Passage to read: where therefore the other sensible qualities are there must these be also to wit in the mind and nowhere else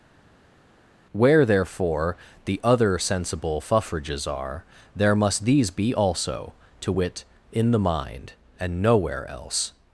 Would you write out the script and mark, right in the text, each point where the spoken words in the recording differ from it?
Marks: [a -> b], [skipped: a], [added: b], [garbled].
where therefore the other sensible [qualities -> fuffrages] are there must these be also to wit in the mind and nowhere else